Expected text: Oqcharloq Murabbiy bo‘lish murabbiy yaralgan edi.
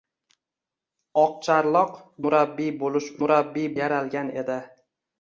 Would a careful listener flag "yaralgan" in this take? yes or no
no